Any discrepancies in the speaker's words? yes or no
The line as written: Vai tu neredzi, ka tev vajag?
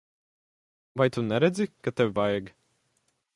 no